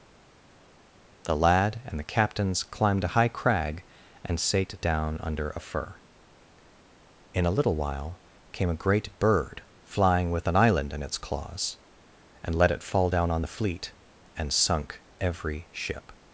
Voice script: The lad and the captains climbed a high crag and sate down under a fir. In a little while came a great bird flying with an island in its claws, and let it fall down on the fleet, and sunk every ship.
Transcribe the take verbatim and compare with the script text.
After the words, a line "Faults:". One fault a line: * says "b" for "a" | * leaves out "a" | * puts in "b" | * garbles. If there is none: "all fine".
The lad and the captains climbed a high crag and sate down under a fir. In a little while came a great bird flying with an island in its claws, and let it fall down on the fleet, and sunk every ship.
Faults:
all fine